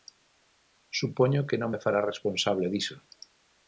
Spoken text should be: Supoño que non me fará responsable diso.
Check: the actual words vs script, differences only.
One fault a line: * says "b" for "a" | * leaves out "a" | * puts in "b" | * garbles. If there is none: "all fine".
all fine